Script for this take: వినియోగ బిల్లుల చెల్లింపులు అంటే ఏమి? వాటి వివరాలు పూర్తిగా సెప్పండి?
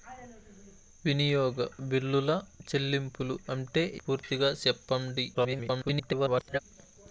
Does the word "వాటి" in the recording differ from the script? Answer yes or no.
yes